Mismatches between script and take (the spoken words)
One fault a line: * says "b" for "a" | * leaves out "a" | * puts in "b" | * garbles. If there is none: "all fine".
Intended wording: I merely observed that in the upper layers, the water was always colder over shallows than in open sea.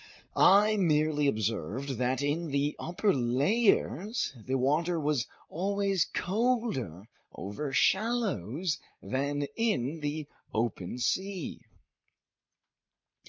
* puts in "the"